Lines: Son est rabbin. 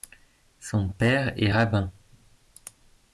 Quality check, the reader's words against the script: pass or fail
fail